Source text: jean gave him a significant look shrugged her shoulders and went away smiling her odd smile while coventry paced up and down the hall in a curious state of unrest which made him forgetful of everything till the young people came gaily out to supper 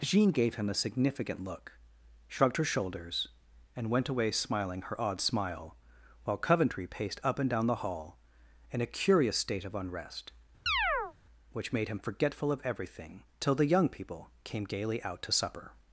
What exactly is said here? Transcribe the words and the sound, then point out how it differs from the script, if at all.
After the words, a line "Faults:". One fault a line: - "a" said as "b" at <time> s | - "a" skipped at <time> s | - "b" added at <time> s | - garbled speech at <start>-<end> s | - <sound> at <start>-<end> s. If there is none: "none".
jean gave him a significant look shrugged her shoulders and went away smiling her odd smile while coventry paced up and down the hall in a curious state of unrest which made him forgetful of everything till the young people came gaily out to supper
Faults:
- chirp at 10.7-11.1 s